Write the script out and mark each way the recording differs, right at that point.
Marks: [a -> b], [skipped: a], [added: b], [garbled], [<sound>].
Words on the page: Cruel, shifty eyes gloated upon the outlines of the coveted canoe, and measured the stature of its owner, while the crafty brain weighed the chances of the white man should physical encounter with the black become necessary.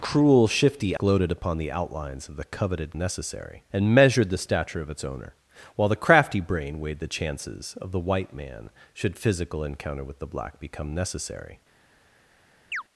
Cruel, shifty [skipped: eyes] gloated upon the outlines of the coveted [canoe, -> necessary] and measured the stature of its owner, while the crafty brain weighed the chances of the white man should physical encounter with the black become necessary. [chirp]